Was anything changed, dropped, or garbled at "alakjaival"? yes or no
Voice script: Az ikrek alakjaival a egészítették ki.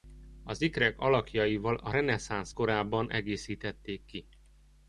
no